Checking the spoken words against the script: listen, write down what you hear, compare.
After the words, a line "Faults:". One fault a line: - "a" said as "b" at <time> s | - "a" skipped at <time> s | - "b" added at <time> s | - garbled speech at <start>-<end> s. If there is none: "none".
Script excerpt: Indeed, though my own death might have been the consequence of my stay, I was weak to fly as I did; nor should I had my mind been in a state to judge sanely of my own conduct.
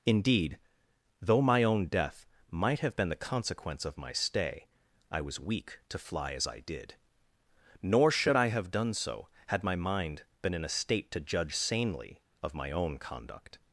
Indeed, though my own death might have been the consequence of my stay, I was weak to fly as I did; nor should I have done so, had my mind been in a state to judge sanely of my own conduct.
Faults:
- "have done so" added at 8.5 s